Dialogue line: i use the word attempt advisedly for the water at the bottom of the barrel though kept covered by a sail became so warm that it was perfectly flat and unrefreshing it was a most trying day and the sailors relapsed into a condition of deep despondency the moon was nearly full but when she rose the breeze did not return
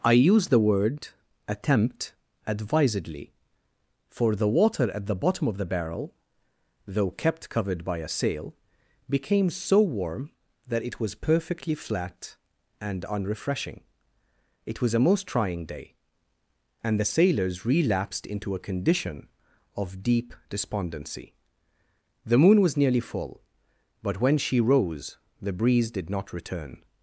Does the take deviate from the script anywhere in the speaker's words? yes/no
no